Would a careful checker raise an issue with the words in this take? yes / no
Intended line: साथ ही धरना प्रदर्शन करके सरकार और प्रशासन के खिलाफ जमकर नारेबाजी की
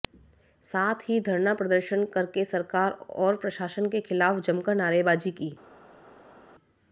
no